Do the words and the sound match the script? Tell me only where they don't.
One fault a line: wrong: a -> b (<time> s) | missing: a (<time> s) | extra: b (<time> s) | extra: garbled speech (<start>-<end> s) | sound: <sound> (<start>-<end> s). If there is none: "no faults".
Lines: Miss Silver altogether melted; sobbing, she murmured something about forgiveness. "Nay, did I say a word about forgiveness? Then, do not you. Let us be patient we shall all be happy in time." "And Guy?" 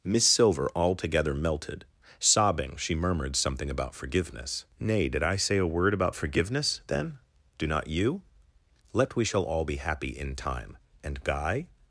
missing: us be patient (9.2 s)